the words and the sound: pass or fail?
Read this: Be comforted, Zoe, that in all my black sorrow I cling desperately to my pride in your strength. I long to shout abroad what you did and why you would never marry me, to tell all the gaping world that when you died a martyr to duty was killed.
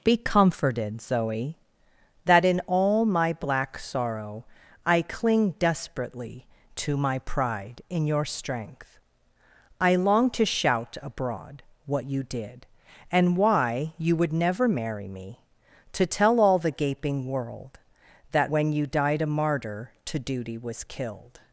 pass